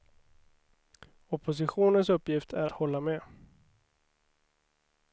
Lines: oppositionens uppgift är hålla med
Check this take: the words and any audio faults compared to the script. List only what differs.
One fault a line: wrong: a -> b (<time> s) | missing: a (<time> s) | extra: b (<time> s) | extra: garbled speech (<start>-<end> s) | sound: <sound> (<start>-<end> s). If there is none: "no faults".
no faults